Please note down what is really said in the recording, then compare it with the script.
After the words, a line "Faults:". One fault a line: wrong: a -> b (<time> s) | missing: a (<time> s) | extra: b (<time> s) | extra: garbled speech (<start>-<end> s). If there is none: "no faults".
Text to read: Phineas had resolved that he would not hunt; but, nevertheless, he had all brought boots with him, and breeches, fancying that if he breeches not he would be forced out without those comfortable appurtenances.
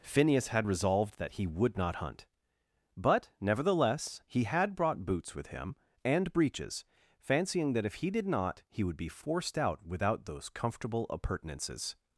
Phineas had resolved that he would not hunt; but, nevertheless, he had brought boots with him, and breeches, fancying that if he did not he would be forced out without those comfortable appurtenances.
Faults:
missing: all (4.7 s)
wrong: breeches -> did (8.1 s)